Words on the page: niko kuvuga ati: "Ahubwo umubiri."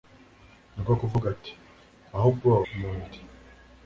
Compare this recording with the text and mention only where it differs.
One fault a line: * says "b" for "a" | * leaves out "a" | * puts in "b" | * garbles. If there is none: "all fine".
all fine